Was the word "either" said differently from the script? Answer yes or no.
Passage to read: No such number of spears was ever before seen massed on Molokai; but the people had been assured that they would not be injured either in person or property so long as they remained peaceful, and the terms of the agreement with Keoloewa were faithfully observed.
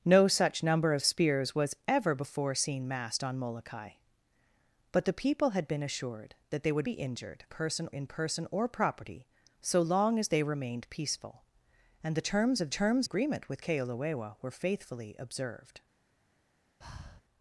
yes